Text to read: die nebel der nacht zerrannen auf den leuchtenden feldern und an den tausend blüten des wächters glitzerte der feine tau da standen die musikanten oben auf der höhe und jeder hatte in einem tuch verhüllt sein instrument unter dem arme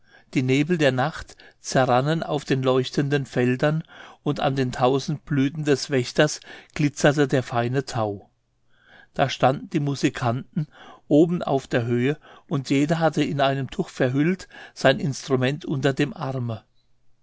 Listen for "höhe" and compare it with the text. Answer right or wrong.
right